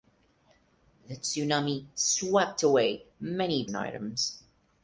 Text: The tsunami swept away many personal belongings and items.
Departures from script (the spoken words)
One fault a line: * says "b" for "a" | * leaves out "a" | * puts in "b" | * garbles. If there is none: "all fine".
* leaves out "personal belongings"